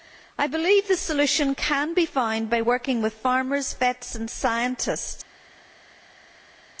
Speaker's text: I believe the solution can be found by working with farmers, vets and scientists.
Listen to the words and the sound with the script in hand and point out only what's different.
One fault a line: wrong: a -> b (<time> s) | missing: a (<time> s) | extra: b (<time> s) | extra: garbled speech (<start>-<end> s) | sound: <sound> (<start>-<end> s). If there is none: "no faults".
no faults